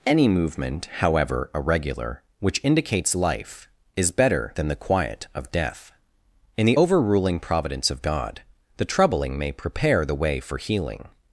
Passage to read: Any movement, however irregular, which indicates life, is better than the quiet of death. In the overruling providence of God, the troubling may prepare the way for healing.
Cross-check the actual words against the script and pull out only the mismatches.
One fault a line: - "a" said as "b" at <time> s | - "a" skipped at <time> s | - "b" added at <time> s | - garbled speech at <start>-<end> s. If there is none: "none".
none